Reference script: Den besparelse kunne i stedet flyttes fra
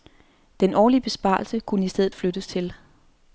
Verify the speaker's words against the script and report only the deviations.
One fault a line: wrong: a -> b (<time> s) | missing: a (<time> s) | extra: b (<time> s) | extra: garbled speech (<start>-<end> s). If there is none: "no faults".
extra: årlige (0.7 s)
wrong: fra -> til (2.5 s)